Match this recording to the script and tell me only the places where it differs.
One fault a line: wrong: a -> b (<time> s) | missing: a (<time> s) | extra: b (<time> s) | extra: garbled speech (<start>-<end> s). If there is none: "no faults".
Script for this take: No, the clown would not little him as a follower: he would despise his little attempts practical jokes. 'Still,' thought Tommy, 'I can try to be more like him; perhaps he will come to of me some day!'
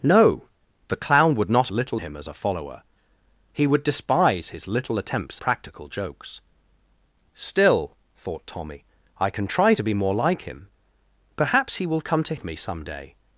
no faults